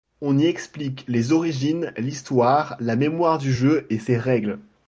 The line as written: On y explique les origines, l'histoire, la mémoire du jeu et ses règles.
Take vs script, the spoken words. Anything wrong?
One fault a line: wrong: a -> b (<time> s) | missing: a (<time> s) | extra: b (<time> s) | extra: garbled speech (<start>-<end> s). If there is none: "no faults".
no faults